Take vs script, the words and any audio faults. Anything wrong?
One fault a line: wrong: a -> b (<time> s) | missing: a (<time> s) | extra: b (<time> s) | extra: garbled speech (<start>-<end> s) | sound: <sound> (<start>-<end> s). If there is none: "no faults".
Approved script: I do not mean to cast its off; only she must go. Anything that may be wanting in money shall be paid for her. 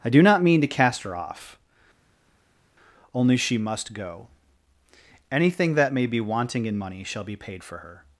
wrong: its -> her (1.0 s)